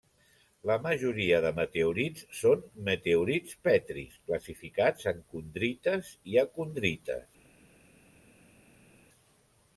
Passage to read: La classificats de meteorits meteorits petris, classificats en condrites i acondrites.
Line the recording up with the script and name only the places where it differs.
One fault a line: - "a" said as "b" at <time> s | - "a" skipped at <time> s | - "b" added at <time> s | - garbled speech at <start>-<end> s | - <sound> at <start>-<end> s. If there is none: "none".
- "classificats" said as "majoria" at 0.8 s
- "són" added at 2.4 s